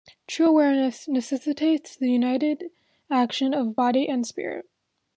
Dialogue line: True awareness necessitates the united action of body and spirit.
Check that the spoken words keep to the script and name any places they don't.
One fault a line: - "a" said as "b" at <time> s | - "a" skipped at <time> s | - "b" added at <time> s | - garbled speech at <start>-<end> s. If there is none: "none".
none